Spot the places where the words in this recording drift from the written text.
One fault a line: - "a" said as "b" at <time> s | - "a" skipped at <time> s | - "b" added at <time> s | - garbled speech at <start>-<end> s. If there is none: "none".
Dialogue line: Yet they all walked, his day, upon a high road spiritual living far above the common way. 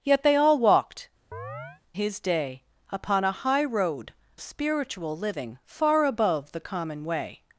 none